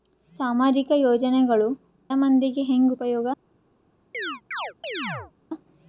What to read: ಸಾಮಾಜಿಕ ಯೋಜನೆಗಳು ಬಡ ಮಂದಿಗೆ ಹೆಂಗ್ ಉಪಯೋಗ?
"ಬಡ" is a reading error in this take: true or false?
true